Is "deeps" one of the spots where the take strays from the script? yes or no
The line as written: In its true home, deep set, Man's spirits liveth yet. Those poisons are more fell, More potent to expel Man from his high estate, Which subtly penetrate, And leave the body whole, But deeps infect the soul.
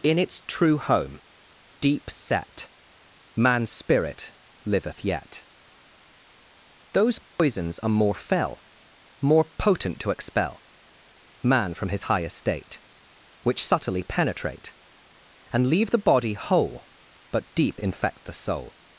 yes